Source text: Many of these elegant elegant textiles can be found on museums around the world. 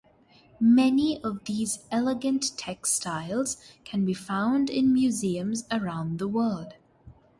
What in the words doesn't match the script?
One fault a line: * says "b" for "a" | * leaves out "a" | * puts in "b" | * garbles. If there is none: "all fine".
* leaves out "elegant"
* says "in" for "on"